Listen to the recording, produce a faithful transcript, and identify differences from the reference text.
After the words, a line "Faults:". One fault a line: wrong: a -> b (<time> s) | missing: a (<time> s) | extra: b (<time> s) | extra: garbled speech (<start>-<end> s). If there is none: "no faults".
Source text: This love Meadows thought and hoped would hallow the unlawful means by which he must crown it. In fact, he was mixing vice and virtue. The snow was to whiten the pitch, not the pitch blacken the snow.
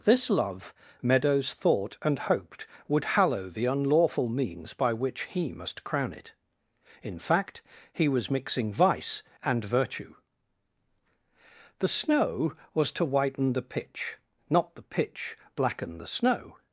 This love Meadows thought and hoped would hallow the unlawful means by which he must crown it. In fact, he was mixing vice and virtue. The snow was to whiten the pitch, not the pitch blacken the snow.
Faults:
no faults